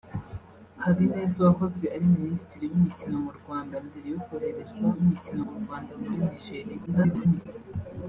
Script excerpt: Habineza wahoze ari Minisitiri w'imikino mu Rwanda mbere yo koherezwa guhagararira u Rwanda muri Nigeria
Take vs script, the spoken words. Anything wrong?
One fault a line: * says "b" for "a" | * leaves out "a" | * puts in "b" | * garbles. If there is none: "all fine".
* says "w'imikino" for "guhagararira"
* garbles